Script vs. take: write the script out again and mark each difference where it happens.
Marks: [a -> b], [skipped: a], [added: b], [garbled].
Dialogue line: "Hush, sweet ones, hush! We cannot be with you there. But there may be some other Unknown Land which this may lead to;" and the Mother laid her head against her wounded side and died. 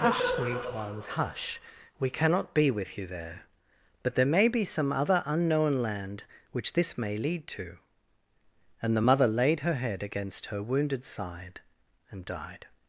"Hush, sweet ones, hush! We cannot be with you there. But there may be some other Unknown Land which this may lead to;" and the Mother laid her head against her wounded side and died.